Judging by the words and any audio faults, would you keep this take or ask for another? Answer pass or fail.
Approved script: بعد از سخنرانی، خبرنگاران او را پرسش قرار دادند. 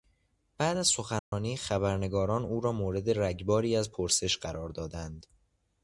fail